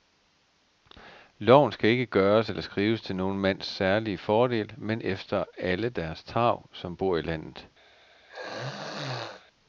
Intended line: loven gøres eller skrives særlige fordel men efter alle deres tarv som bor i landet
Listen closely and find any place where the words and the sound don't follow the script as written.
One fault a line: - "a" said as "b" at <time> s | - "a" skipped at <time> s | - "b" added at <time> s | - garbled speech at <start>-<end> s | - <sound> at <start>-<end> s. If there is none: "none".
- "skal ikke" added at 1.7 s
- "til nogen mands" added at 3.0 s
- throat clearing at 8.3-9.5 s